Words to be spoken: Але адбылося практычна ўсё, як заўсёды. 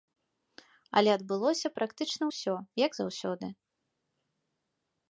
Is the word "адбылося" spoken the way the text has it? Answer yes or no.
yes